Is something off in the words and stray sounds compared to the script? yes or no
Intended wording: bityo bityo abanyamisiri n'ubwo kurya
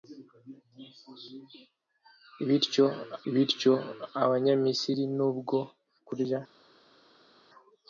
no